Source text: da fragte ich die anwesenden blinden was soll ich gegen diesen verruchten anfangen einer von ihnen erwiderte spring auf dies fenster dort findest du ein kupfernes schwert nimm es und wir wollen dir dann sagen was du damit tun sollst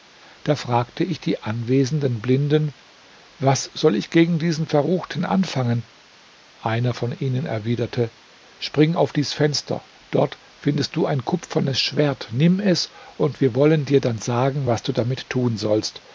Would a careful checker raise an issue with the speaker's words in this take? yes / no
no